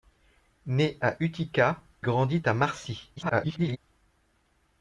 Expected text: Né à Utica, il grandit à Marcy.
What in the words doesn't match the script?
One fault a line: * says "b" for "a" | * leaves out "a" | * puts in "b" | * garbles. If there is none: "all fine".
* leaves out "il"
* garbles